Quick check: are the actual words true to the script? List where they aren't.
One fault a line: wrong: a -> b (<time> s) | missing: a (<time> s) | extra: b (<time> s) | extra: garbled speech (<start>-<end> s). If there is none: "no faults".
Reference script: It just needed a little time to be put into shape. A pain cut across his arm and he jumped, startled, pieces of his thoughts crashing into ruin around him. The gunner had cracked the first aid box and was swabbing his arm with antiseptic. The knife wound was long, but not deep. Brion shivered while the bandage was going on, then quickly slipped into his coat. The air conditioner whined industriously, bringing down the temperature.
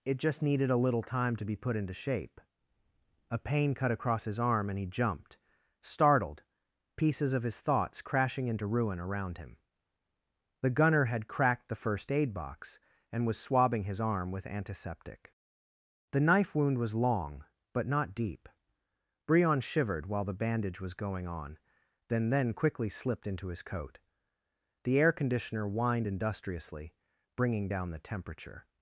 extra: then (22.3 s)